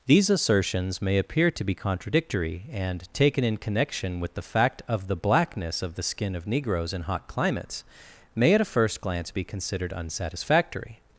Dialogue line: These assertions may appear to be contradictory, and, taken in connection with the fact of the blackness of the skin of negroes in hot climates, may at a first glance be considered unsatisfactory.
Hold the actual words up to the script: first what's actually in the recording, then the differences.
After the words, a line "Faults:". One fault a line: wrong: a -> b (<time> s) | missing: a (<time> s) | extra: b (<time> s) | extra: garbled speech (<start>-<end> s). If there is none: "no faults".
These assertions may appear to be contradictory, and, taken in connection with the fact of the blackness of the skin of negroes in hot climates, may at a first glance be considered unsatisfactory.
Faults:
no faults